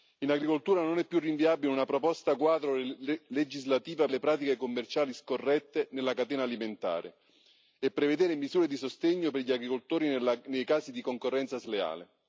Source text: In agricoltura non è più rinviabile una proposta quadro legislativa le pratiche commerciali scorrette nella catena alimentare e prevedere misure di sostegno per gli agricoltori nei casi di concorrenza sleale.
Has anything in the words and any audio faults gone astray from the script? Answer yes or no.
no